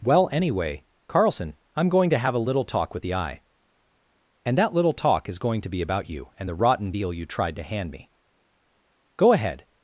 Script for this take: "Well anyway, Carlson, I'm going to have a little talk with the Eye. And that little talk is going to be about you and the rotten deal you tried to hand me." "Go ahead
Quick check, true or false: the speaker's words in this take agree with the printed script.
true